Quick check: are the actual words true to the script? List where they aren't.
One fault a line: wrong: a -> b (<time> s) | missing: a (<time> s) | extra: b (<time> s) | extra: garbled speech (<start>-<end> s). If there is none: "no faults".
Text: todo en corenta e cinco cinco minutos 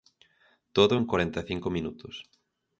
missing: cinco (1.7 s)